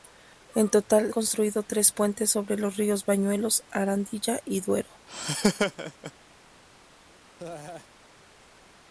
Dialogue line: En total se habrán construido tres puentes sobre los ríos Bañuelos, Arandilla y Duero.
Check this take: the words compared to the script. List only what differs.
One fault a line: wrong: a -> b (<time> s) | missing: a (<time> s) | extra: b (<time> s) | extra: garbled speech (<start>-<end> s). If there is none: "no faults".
missing: se habrán (1.1 s)